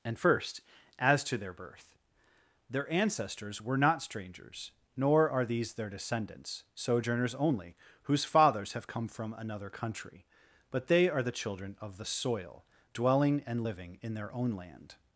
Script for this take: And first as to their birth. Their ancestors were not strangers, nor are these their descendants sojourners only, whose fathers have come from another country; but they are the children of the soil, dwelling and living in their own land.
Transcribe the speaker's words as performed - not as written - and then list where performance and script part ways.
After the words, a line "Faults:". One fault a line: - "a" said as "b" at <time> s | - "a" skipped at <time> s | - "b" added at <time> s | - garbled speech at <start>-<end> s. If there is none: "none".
And first as to their birth. Their ancestors were not strangers, nor are these their descendants sojourners only, whose fathers have come from another country; but they are the children of the soil, dwelling and living in their own land.
Faults:
none